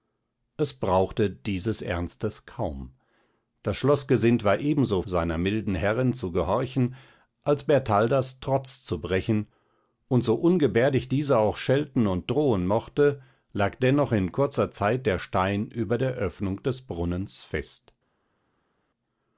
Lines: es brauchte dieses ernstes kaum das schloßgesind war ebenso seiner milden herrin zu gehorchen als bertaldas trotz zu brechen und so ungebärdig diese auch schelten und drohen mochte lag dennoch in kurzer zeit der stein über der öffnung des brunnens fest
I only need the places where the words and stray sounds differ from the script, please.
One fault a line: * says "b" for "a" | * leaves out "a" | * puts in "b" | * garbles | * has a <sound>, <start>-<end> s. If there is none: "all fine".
all fine